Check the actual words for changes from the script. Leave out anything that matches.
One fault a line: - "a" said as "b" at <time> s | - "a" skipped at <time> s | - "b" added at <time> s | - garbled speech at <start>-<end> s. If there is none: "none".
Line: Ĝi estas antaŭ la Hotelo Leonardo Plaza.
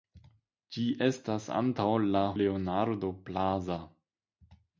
- "Hotelo" skipped at 2.2 s